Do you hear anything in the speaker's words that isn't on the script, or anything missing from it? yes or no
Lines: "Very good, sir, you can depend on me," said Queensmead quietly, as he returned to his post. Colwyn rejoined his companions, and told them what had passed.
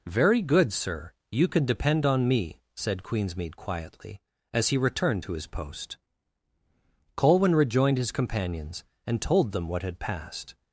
no